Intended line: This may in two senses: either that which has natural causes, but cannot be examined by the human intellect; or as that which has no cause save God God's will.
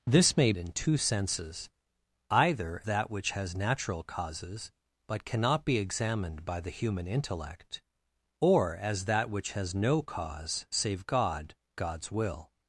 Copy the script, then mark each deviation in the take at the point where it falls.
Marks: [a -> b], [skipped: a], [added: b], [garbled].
This may in two senses: either that which has natural causes, but cannot be examined by the human intellect; or as that which has no cause save God God's will.